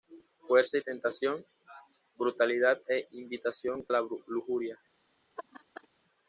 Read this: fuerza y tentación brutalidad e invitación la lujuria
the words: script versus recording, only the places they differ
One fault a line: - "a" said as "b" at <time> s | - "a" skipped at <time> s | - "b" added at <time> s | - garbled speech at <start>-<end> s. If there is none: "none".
none